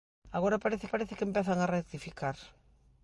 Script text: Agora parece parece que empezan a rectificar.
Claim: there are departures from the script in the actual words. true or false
false